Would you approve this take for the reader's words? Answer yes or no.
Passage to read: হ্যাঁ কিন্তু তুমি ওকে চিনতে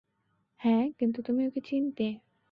yes